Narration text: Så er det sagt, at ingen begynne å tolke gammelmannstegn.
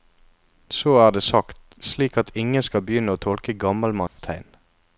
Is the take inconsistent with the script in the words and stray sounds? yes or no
yes